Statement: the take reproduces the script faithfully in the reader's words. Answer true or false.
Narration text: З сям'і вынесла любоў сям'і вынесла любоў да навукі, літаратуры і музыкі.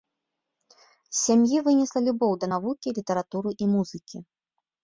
false